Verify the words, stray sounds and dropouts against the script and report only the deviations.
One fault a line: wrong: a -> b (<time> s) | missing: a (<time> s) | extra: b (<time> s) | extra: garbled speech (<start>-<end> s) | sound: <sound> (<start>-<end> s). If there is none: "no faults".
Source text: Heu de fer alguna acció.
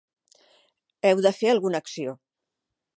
no faults